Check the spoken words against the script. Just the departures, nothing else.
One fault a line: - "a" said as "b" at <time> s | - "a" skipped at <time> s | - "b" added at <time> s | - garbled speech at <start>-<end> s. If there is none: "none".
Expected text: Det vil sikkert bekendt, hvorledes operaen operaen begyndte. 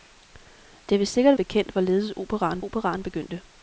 none